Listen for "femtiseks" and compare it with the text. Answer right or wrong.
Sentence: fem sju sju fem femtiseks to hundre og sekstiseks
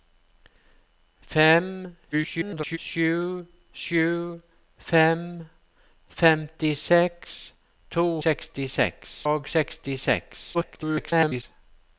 right